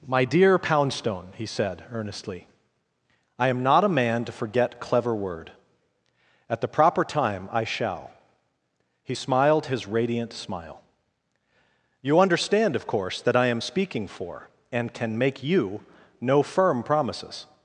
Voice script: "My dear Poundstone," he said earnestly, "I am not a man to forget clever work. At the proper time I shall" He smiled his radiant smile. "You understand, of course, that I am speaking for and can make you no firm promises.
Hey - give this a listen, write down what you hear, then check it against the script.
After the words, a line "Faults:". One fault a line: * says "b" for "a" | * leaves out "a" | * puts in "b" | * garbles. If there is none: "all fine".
"My dear Poundstone," he said earnestly, "I am not a man to forget clever word. At the proper time I shall" He smiled his radiant smile. "You understand, of course, that I am speaking for and can make you no firm promises.
Faults:
* says "word" for "work"